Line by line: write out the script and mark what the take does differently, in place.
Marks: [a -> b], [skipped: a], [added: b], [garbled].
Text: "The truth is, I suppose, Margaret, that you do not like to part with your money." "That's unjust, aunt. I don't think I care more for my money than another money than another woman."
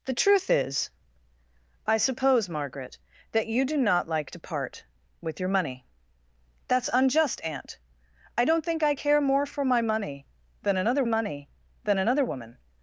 "The truth is, I suppose, Margaret, that you do not like to part with your money." "That's unjust, aunt. I don't think I care more for my money than another money than another woman."